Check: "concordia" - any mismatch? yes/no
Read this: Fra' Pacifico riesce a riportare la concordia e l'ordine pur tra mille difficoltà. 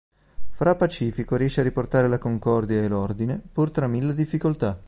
no